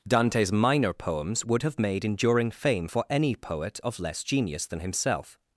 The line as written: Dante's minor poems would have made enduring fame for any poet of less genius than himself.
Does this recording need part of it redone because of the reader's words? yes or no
no